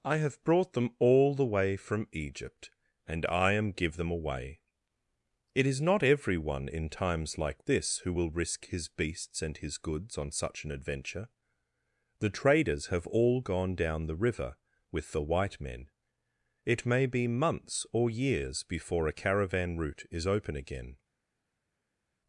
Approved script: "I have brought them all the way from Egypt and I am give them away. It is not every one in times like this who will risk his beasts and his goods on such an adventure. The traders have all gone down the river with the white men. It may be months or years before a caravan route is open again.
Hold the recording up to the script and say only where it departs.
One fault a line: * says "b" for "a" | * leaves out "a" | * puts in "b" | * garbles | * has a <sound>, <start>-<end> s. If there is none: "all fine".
all fine